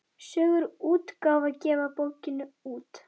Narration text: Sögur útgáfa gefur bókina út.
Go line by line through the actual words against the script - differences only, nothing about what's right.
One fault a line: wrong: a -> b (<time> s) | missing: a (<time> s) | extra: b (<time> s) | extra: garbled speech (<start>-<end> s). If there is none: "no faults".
no faults